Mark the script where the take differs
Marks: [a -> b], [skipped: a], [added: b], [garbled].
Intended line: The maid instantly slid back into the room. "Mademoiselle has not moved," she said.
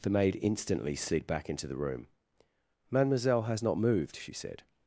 The maid instantly slid back into the room. "Mademoiselle has not moved," she said.